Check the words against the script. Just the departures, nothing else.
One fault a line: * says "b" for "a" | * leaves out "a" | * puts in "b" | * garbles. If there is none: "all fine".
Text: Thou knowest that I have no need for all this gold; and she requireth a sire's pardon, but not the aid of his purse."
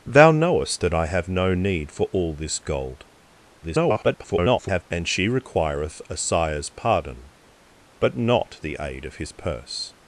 * garbles